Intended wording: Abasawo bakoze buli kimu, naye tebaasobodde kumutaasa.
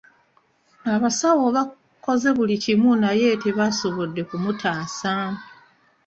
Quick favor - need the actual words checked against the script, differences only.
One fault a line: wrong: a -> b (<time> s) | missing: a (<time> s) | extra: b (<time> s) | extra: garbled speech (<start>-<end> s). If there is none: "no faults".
no faults